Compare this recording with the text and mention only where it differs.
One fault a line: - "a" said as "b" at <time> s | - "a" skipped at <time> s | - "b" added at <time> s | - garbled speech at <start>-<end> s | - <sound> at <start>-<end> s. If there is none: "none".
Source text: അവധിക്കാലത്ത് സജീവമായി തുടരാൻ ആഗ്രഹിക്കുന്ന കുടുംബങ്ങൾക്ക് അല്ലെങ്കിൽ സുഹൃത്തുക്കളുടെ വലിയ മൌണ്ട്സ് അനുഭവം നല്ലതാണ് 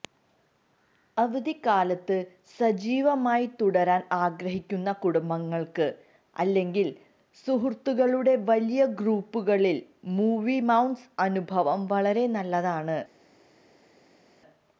- "ഗ്രൂപ്പുകളിൽ മൂവി" added at 9.0 s
- "വളരെ" added at 11.9 s